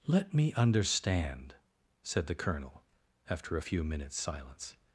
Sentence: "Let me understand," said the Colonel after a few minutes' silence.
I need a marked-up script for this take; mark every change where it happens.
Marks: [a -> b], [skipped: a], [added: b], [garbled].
"Let me understand," said the Colonel after a few minutes' silence.